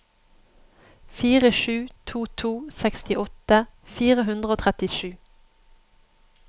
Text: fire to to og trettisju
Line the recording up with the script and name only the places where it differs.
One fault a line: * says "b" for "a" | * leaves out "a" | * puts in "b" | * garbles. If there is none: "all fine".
* puts in "sju"
* puts in "sekstiåtte fire hundre"